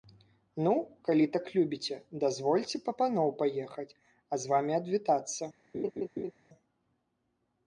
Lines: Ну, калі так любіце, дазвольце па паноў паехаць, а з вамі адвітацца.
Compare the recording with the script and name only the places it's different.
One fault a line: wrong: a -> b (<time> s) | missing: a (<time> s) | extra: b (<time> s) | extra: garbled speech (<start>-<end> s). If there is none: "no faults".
no faults